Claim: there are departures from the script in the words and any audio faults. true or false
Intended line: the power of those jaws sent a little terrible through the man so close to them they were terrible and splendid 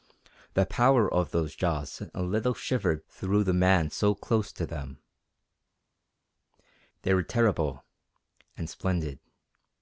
true